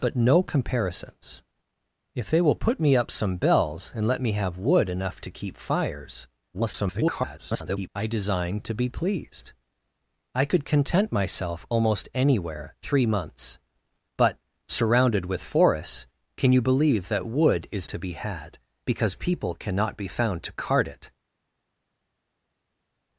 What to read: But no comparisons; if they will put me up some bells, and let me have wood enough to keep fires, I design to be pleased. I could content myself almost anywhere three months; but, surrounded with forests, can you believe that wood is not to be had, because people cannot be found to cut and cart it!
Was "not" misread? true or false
true